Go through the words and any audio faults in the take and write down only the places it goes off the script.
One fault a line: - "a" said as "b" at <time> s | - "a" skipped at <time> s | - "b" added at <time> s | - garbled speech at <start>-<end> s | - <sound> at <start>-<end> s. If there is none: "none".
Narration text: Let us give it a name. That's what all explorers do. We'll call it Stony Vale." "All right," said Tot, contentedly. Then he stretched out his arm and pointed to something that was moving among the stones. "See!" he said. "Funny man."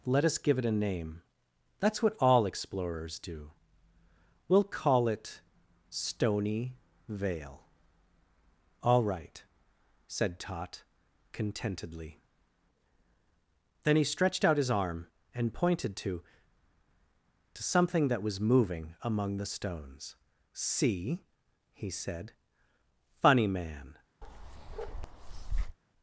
- "to" added at 17.5 s
- bark at 24.2-25.8 s